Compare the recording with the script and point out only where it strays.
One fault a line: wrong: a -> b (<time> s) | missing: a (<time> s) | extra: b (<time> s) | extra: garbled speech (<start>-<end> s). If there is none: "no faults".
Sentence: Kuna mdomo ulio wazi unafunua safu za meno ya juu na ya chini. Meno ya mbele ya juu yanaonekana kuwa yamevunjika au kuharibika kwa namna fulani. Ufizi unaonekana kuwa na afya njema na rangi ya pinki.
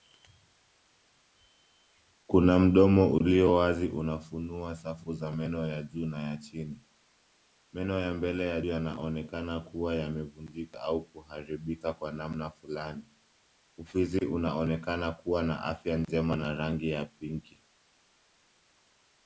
missing: juu (8.6 s)